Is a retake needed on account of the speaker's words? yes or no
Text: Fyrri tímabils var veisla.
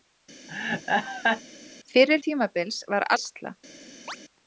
no